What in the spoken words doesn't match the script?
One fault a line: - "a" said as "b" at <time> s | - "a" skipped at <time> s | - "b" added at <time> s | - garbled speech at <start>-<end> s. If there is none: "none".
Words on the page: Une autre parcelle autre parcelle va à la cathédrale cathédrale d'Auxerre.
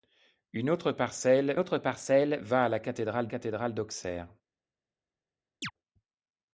none